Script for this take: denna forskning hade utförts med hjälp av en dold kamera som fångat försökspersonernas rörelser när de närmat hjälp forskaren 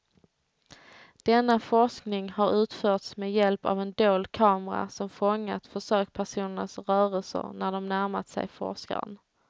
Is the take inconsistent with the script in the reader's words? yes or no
yes